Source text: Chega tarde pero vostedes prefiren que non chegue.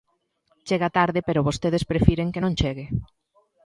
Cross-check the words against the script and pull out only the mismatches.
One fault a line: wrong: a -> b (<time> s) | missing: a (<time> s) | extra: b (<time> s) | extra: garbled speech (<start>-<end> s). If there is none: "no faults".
no faults